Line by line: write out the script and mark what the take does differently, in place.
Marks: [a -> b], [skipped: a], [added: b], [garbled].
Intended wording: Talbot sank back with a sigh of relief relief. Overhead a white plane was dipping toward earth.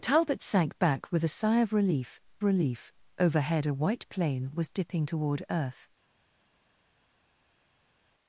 Talbot sank back with a sigh of relief relief. Overhead a white plane was dipping toward earth.